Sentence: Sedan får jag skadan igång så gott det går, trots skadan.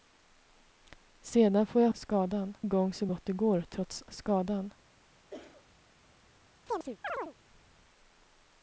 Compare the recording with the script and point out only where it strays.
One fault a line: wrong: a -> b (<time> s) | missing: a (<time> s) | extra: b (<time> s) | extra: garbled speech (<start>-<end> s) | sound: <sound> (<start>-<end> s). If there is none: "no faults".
sound: cough (5.3-5.7 s)
sound: chirp (6.7-7.3 s)